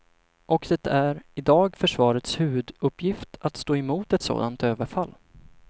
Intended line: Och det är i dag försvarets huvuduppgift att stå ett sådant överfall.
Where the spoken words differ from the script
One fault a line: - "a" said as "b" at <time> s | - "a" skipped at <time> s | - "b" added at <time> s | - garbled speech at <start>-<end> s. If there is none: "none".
- "emot" added at 3.8 s